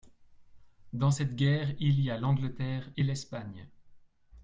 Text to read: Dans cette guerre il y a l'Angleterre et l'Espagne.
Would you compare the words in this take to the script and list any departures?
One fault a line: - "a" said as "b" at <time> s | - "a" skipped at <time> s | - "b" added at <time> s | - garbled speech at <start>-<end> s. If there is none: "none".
none